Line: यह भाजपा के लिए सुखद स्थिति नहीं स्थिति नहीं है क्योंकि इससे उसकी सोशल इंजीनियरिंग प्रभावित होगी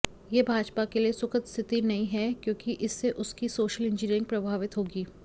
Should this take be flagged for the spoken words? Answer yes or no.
yes